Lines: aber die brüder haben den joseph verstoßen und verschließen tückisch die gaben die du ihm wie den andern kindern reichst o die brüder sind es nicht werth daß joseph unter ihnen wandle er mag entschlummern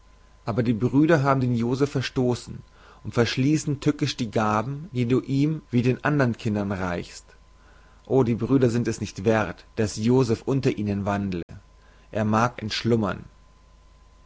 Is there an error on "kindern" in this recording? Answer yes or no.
no